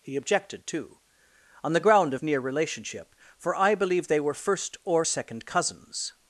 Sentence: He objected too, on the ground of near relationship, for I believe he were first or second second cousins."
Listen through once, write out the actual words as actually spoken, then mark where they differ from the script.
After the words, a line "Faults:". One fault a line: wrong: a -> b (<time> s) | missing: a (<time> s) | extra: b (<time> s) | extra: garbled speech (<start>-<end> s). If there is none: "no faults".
He objected too, on the ground of near relationship, for I believe they were first or second cousins."
Faults:
wrong: he -> they (4.1 s)
missing: second (5.5 s)